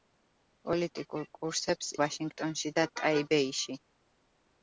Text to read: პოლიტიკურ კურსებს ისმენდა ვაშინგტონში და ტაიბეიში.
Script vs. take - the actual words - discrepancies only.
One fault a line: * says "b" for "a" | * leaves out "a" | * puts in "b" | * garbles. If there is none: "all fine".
* leaves out "ისმენდა"